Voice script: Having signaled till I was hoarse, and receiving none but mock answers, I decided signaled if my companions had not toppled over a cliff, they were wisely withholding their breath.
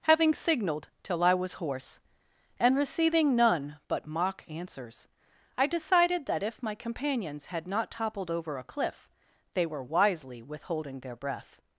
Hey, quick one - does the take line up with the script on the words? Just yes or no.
no